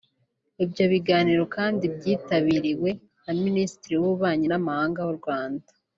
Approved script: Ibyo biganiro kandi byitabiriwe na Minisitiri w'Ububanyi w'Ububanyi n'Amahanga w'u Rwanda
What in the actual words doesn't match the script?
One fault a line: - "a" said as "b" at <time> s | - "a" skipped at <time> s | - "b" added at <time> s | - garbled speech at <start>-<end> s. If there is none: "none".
- "w'Ububanyi" skipped at 4.5 s